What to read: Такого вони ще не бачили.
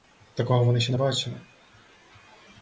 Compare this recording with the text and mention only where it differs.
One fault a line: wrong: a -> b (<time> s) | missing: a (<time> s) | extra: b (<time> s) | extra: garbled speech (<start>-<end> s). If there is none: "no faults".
no faults